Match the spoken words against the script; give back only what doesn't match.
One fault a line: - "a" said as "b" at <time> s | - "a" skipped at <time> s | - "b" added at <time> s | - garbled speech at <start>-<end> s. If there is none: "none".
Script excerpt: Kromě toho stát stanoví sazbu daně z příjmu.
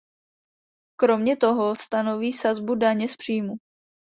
- "stát" skipped at 1.8 s